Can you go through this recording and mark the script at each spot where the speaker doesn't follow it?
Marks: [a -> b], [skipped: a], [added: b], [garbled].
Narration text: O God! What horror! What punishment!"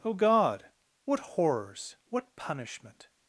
O God! What [horror! -> horrors] What punishment!"